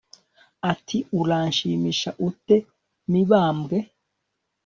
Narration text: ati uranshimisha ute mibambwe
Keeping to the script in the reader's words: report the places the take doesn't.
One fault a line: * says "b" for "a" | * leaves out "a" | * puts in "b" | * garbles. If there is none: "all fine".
all fine